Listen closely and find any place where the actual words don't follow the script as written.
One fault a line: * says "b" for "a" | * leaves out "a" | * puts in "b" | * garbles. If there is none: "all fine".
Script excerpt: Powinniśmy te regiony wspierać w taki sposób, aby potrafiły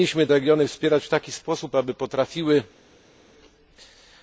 * leaves out "te"